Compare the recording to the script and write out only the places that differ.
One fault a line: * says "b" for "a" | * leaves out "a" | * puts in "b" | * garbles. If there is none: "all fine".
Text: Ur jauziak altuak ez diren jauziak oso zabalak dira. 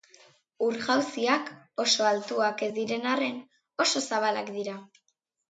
* puts in "oso"
* says "arren" for "jauziak"